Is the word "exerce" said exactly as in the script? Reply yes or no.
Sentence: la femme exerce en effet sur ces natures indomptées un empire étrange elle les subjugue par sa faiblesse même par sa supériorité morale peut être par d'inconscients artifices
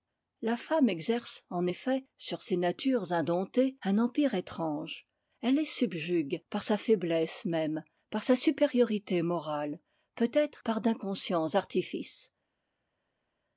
yes